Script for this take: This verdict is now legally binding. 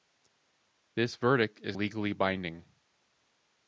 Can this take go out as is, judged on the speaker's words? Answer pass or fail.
fail